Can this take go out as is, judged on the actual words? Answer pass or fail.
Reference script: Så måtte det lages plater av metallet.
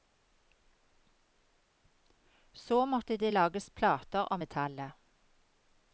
pass